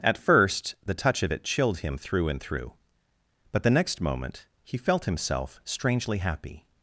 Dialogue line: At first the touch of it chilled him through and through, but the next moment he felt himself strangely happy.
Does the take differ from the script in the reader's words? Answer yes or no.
no